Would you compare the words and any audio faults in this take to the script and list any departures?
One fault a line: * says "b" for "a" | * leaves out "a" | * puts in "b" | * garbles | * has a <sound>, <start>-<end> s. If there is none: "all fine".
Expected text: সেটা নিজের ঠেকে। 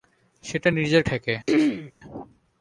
* has a throat clearing, 1.5-1.9 s